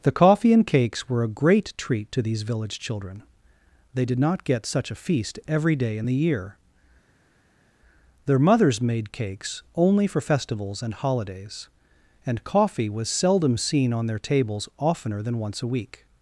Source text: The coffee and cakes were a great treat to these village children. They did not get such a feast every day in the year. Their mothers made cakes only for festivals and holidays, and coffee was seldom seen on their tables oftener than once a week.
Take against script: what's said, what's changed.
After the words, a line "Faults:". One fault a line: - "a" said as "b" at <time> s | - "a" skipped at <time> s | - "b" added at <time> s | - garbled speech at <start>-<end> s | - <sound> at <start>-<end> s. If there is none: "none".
The coffee and cakes were a great treat to these village children. They did not get such a feast every day in the year. Their mothers made cakes only for festivals and holidays, and coffee was seldom seen on their tables oftener than once a week.
Faults:
none